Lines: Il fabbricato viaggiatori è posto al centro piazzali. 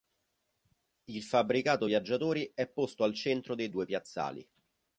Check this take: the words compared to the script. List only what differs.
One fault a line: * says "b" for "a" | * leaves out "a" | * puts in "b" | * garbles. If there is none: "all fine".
* puts in "dei due"